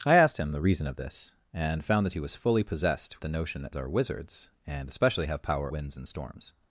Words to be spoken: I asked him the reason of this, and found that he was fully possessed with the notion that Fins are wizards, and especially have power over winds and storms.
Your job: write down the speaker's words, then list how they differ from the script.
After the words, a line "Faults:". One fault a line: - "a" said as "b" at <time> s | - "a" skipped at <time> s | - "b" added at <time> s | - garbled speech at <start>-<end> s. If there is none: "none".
I asked him the reason of this, and found that he was fully possessed the notion that Are wizards, and especially have power winds and storms.
Faults:
- "with" skipped at 3.2 s
- "Fins" skipped at 3.7 s
- "over" skipped at 5.7 s